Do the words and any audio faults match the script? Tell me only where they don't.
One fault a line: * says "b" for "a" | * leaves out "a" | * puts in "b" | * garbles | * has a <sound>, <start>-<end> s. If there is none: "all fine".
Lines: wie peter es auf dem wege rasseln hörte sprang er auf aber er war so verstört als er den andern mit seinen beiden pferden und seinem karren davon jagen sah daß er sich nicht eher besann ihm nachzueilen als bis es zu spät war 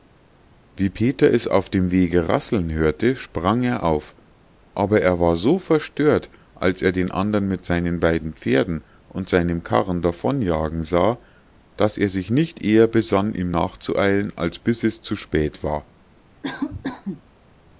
* has a cough, 16.4-17.2 s